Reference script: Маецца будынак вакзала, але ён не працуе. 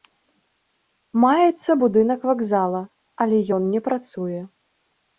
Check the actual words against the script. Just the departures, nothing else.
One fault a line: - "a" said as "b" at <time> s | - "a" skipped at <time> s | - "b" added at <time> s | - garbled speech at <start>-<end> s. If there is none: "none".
none